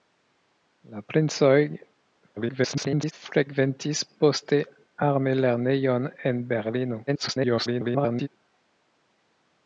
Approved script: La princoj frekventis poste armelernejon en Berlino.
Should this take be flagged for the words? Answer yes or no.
yes